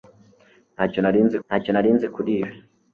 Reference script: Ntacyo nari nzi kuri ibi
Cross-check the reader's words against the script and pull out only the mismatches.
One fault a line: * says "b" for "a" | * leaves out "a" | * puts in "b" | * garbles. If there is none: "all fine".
* puts in "ntacyo nari nzi"